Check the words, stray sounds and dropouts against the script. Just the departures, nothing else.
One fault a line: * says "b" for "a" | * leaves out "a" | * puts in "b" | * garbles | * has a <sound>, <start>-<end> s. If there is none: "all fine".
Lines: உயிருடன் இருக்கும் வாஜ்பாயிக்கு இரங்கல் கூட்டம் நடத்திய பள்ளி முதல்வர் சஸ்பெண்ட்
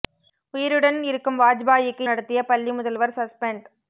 * leaves out "இரங்கல் கூட்டம்"